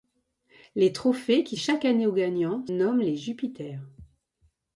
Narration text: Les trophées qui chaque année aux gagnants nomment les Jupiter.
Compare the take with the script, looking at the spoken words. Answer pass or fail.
pass